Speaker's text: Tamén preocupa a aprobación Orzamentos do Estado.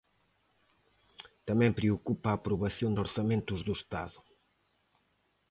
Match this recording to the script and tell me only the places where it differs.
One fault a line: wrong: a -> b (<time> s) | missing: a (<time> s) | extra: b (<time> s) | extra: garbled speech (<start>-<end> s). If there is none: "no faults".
no faults